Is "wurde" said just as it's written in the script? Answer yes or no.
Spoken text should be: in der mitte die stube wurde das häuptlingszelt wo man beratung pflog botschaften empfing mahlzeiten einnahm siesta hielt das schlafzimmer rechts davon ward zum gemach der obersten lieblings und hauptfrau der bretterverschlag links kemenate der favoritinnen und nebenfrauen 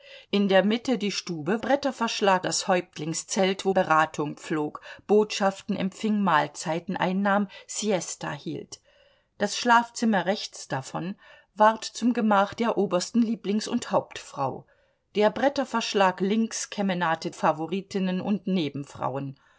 no